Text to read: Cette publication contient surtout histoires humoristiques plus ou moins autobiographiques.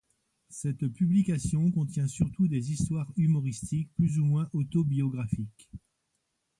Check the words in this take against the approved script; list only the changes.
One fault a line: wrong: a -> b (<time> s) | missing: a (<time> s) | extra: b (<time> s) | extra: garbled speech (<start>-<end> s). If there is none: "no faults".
extra: des (2.5 s)